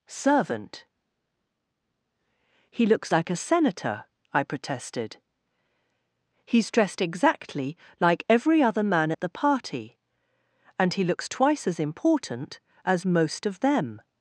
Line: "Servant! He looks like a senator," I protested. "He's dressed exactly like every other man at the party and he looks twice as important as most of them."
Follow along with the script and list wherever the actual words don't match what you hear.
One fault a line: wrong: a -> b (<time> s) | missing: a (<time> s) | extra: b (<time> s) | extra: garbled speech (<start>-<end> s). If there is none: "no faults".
no faults